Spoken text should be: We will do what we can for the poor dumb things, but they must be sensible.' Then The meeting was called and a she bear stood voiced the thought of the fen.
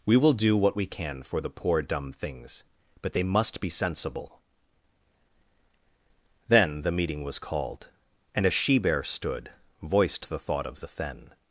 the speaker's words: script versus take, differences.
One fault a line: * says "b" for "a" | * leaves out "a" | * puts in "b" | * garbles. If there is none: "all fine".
all fine